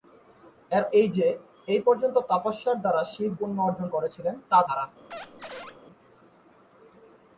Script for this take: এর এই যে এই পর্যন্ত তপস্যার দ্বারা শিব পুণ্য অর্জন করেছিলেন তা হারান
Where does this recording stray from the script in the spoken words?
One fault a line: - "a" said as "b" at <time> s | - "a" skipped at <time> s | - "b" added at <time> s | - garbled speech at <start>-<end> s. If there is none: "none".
none